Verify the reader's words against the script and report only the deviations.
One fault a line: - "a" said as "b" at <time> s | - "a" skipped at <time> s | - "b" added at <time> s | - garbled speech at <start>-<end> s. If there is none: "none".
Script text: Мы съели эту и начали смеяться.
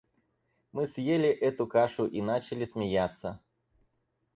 - "кашу" added at 1.6 s